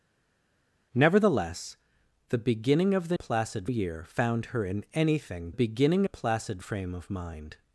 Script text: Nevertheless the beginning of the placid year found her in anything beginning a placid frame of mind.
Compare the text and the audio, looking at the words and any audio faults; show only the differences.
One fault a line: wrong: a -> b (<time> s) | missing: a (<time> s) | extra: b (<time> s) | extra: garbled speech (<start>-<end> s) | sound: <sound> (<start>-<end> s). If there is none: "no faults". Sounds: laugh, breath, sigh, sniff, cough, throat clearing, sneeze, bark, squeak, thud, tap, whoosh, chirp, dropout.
no faults